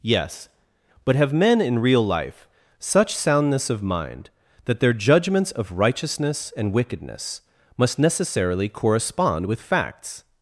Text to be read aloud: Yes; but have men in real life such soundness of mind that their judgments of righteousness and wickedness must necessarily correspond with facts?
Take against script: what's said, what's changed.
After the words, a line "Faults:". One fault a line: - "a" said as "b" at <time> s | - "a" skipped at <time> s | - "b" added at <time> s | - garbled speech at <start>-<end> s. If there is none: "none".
Yes; but have men in real life such soundness of mind that their judgments of righteousness and wickedness must necessarily correspond with facts?
Faults:
none